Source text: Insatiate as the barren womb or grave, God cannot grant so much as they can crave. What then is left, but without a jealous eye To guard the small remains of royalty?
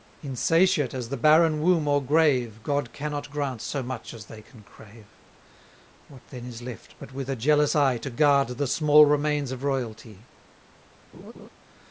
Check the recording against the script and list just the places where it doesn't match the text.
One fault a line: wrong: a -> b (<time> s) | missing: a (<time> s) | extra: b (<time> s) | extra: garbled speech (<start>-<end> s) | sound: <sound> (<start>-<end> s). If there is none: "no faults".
wrong: without -> with (7.1 s)
sound: laugh (11.1-11.5 s)